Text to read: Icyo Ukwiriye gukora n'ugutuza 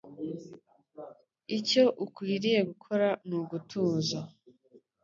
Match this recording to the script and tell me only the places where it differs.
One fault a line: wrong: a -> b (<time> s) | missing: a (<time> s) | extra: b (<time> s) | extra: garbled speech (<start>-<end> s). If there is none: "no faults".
no faults